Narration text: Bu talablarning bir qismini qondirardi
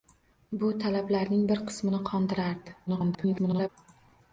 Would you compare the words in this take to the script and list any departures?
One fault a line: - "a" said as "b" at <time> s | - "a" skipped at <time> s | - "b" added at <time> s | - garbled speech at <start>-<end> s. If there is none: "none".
- garbled speech at 2.9-3.7 s